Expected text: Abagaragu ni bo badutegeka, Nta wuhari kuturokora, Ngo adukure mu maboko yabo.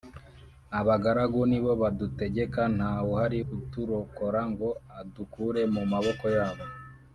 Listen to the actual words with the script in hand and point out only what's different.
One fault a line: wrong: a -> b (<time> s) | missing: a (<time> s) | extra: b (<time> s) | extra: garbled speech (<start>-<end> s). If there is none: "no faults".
no faults